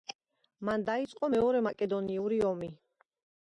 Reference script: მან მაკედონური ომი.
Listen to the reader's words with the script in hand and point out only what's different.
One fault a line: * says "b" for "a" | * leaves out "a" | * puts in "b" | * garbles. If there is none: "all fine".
* puts in "დაიწყო მეორე"